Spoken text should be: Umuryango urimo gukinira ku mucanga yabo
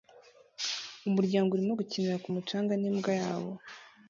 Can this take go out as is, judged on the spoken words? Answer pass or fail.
fail